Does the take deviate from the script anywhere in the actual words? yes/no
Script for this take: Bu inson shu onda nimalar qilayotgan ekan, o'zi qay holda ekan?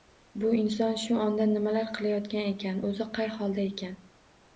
no